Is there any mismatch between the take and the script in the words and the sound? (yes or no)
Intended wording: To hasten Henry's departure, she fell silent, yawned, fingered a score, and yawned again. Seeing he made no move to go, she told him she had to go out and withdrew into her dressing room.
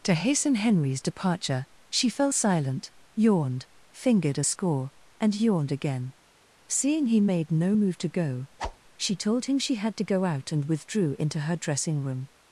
yes